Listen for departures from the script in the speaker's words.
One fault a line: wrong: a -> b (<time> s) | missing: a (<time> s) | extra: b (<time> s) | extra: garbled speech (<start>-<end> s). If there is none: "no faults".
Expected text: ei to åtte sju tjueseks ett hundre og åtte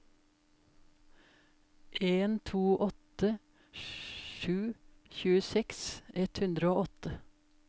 wrong: ei -> en (2.0 s)